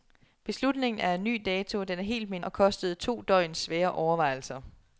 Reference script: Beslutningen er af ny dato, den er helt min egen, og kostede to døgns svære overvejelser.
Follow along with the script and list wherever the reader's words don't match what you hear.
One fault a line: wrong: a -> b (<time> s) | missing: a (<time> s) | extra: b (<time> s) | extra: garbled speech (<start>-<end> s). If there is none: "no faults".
missing: egen (2.5 s)